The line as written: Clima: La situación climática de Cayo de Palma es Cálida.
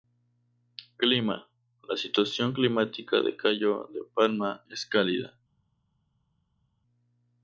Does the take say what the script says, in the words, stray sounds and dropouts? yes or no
yes